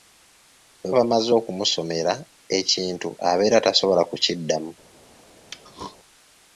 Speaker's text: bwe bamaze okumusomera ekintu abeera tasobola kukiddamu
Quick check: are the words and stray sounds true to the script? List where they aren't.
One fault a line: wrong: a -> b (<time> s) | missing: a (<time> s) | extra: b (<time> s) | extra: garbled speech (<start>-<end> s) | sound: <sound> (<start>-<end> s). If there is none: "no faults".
sound: throat clearing (5.5-6.0 s)